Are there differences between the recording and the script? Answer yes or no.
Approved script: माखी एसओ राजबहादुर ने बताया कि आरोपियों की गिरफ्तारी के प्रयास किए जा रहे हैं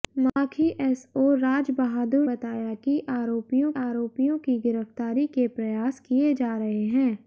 yes